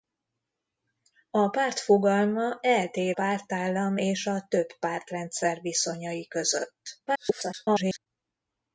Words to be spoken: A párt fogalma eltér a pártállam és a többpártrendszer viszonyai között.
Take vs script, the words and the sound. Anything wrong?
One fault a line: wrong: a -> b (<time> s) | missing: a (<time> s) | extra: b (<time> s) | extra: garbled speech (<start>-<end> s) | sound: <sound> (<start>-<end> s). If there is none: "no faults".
missing: a (3.2 s)
extra: garbled speech (7.1-8.1 s)